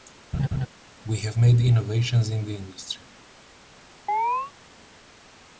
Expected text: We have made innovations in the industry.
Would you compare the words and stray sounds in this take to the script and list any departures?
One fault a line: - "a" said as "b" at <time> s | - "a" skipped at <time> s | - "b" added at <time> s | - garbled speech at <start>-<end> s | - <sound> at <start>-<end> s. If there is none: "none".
- laugh at 0.3-0.7 s
- chirp at 4.1-4.5 s